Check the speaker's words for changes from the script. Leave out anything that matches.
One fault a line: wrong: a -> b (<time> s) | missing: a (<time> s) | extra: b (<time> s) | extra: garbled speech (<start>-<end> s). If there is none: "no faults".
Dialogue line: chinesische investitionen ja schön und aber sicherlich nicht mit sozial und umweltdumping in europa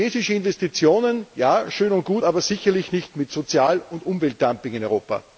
extra: gut (2.1 s)